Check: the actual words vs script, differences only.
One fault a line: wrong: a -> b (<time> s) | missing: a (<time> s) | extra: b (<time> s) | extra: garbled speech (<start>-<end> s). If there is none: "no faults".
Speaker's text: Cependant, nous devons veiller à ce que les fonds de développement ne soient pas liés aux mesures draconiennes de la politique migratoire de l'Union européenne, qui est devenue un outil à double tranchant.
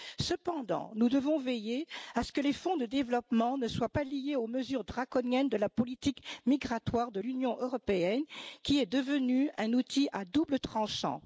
no faults